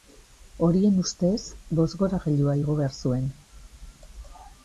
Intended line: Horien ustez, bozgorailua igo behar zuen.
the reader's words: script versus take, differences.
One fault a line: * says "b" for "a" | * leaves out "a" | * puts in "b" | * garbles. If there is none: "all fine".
all fine